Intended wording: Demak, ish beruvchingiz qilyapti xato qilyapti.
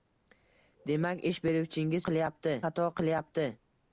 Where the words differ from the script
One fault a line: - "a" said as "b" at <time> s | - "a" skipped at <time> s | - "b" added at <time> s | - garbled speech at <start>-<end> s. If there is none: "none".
none